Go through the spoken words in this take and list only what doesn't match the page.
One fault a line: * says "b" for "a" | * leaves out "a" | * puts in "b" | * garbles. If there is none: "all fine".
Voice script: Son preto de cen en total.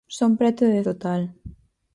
* leaves out "cen en"